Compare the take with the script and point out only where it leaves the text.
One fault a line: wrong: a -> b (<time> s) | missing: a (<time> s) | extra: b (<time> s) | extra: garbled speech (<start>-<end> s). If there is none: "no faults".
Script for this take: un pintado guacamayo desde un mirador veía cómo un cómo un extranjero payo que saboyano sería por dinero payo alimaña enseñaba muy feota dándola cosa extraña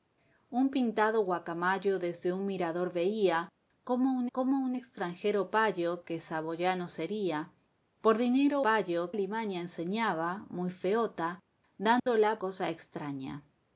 no faults